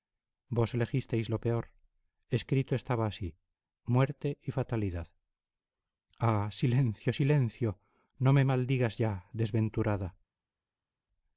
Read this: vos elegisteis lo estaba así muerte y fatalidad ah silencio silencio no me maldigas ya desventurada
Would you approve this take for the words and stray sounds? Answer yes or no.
no